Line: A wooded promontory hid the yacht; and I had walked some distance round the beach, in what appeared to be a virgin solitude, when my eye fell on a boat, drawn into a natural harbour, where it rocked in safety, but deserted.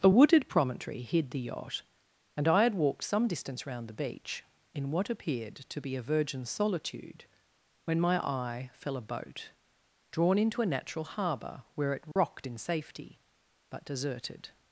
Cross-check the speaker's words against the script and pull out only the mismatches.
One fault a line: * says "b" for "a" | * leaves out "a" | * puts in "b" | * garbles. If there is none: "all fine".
* leaves out "on"